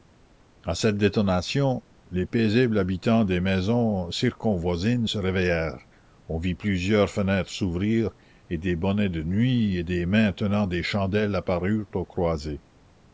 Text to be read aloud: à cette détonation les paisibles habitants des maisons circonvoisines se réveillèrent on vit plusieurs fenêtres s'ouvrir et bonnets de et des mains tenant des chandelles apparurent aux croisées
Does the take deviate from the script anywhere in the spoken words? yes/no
yes